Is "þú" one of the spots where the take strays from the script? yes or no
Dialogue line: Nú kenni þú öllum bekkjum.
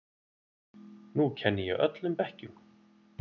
yes